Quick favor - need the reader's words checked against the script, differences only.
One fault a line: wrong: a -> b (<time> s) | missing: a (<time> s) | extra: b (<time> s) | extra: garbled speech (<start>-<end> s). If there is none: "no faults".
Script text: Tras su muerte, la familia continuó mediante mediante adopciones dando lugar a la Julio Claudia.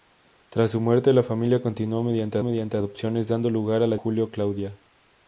no faults